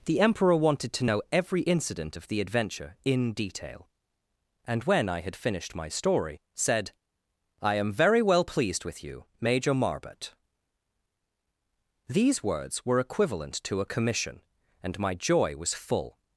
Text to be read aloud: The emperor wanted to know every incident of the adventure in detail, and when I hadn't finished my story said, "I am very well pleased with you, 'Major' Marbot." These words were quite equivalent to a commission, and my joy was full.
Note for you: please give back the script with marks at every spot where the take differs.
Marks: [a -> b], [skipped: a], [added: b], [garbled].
The emperor wanted to know every incident of the adventure in detail, and when I [hadn't -> had] finished my story said, "I am very well pleased with you, 'Major' Marbot." These words were [skipped: quite] equivalent to a commission, and my joy was full.